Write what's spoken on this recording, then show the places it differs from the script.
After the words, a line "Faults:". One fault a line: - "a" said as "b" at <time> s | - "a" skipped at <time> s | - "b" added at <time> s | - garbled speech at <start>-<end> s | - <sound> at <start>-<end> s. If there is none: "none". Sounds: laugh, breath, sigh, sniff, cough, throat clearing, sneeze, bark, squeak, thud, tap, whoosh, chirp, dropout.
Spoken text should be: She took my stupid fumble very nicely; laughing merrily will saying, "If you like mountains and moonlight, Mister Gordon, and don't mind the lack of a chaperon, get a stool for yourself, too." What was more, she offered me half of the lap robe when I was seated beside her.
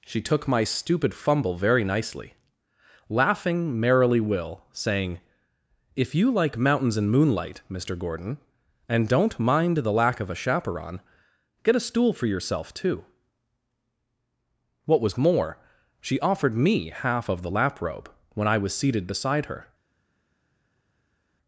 She took my stupid fumble very nicely; laughing merrily will saying, "If you like mountains and moonlight, Mister Gordon, and don't mind the lack of a chaperon, get a stool for yourself, too." What was more, she offered me half of the lap robe when I was seated beside her.
Faults:
none